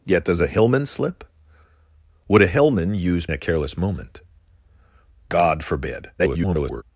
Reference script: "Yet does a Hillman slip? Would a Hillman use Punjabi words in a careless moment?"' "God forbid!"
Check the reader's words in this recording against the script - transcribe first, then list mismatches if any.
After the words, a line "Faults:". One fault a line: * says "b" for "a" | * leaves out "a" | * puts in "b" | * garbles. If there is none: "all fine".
"Yet does a Hillman slip? Would a Hillman use A careless moment?"' "God forbid!" [garbled]
Faults:
* leaves out "Punjabi words in"
* garbles